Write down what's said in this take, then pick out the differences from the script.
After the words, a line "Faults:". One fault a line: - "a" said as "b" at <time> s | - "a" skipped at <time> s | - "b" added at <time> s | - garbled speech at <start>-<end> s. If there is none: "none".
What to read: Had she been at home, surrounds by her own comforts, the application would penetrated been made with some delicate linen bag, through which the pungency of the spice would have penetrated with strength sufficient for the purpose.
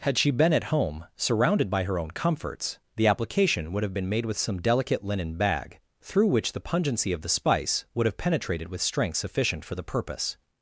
Had she been at home, surrounded by her own comforts, the application would have been made with some delicate linen bag, through which the pungency of the spice would have penetrated with strength sufficient for the purpose.
Faults:
- "surrounds" said as "surrounded" at 1.1 s
- "penetrated" said as "have" at 3.8 s